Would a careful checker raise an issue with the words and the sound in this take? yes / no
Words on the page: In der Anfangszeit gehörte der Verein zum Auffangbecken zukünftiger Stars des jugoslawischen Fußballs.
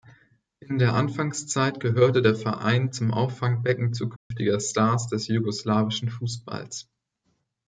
yes